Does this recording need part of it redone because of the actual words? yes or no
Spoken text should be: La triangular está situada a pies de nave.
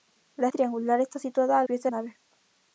no